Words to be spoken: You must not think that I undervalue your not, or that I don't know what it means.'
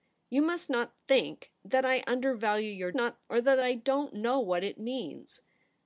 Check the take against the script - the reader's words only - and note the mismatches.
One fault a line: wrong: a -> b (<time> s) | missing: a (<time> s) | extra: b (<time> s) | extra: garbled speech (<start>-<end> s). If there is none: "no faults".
no faults